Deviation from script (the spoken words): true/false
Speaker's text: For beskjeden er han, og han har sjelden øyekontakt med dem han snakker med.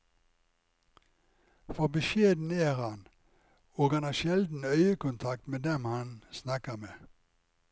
false